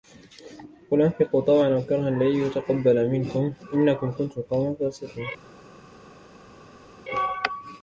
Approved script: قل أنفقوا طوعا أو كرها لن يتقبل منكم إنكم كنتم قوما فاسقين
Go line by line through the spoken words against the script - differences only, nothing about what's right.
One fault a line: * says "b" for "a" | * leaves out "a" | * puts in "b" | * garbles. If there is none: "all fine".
all fine